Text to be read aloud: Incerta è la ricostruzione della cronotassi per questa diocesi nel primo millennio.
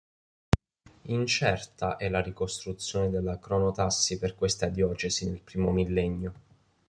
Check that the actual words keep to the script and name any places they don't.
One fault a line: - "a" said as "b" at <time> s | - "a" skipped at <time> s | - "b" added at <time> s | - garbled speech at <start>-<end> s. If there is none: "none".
none